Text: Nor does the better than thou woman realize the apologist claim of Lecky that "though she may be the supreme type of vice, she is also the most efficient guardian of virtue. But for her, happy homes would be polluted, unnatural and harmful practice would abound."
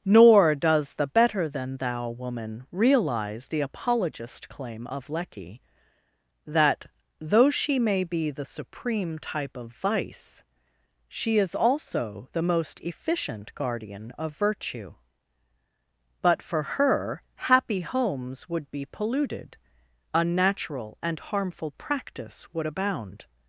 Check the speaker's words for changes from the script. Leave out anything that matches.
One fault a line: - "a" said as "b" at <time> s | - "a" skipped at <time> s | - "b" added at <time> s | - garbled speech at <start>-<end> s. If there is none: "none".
none